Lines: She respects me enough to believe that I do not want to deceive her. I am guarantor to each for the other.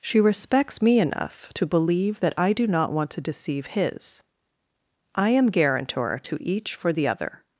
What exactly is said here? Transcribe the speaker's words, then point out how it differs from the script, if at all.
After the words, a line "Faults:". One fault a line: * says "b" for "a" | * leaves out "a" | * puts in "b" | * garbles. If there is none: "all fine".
She respects me enough to believe that I do not want to deceive his. I am guarantor to each for the other.
Faults:
* says "his" for "her"